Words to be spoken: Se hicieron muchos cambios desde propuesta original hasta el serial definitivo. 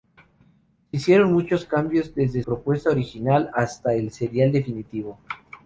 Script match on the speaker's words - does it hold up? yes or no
yes